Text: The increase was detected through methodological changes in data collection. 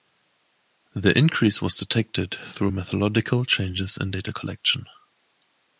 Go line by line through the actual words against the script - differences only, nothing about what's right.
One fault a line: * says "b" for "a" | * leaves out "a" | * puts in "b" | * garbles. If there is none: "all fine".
all fine